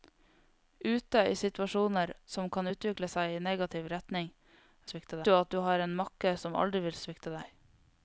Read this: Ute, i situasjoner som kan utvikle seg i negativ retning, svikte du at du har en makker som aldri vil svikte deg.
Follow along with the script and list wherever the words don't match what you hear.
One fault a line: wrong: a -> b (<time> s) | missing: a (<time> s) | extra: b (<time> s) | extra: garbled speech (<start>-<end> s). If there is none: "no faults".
no faults